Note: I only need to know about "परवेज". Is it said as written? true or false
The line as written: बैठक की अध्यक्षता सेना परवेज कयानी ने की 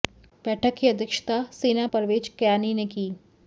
true